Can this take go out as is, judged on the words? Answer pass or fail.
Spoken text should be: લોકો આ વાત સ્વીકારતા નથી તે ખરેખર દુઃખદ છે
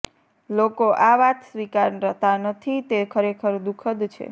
pass